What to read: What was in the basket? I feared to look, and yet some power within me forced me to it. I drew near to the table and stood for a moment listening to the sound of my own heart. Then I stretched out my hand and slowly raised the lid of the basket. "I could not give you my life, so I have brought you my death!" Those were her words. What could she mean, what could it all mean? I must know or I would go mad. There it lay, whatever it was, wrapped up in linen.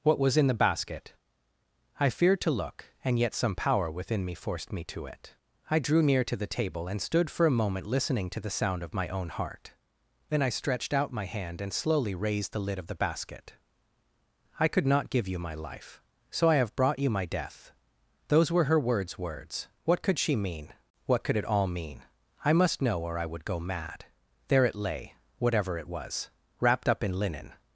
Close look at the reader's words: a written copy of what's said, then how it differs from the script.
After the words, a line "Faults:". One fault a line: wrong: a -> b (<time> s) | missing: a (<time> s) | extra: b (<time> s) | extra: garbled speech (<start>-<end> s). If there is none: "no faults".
What was in the basket? I feared to look, and yet some power within me forced me to it. I drew near to the table and stood for a moment listening to the sound of my own heart. Then I stretched out my hand and slowly raised the lid of the basket. "I could not give you my life, so I have brought you my death!" Those were her words words. What could she mean, what could it all mean? I must know or I would go mad. There it lay, whatever it was, wrapped up in linen.
Faults:
extra: words (19.2 s)